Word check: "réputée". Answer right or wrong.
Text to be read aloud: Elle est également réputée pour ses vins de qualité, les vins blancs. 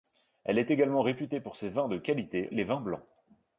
right